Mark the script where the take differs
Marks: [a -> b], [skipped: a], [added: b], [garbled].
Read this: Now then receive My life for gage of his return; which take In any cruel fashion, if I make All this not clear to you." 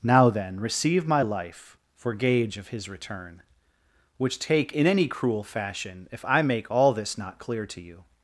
Now then receive My life for gage of his return; which take In any cruel fashion, if I make All this not clear to you."